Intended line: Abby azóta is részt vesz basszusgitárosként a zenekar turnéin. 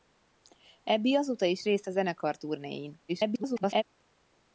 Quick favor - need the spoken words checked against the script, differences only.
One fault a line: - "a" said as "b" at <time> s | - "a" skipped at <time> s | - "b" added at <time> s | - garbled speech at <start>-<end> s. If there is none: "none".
- "vesz basszusgitárosként" skipped at 1.9 s
- garbled speech at 3.1-3.8 s